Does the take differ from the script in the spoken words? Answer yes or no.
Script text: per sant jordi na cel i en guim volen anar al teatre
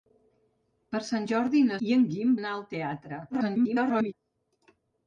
yes